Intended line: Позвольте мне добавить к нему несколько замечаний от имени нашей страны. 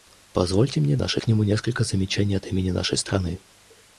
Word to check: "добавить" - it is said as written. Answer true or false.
false